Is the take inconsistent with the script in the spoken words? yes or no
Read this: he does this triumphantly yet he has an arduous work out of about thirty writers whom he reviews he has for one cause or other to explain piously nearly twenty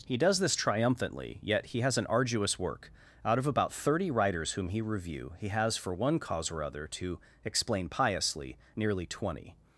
yes